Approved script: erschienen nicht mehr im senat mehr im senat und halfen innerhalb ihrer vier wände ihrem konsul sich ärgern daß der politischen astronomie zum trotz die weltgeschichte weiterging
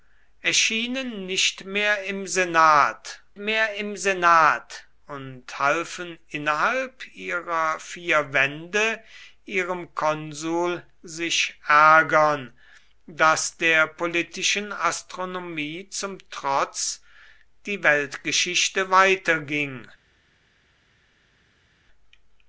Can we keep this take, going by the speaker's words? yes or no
yes